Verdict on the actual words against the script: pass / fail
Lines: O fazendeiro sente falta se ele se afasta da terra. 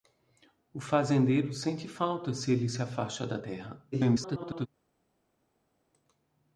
fail